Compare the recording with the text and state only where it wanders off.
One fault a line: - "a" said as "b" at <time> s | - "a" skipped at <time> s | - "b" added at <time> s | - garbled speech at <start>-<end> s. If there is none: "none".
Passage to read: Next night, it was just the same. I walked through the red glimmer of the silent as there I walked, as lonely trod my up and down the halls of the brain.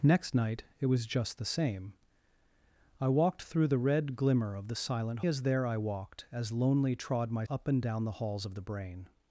none